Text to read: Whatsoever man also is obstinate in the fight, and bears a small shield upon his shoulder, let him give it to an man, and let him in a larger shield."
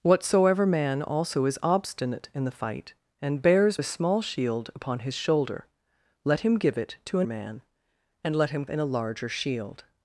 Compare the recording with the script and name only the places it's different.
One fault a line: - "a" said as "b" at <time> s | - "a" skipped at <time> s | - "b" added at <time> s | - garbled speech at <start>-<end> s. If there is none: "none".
none